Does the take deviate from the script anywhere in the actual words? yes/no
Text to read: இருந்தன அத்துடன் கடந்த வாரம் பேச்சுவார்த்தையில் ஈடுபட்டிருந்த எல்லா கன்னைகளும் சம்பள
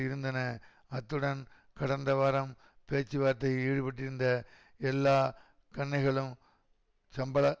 no